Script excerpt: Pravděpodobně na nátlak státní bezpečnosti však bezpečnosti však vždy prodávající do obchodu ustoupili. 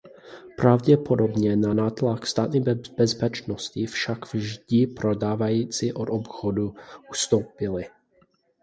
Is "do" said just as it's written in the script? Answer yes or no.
no